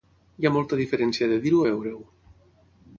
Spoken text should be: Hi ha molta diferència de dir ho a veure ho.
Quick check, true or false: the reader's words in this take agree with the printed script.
true